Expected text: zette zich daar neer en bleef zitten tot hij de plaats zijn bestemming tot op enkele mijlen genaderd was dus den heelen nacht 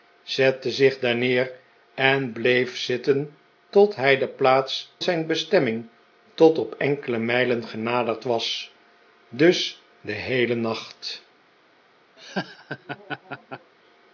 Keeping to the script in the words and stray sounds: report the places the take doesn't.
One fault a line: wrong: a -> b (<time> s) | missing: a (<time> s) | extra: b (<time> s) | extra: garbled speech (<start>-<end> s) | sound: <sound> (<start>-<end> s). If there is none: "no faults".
sound: laugh (12.2-13.7 s)